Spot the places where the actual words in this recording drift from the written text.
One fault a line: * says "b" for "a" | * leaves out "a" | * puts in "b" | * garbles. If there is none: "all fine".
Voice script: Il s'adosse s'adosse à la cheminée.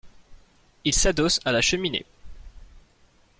* leaves out "s'adosse"